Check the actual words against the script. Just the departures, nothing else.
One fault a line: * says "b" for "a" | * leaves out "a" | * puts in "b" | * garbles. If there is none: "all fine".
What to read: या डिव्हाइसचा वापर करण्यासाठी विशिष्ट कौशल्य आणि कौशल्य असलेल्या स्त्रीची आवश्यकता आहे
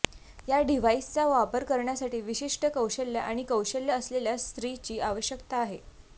all fine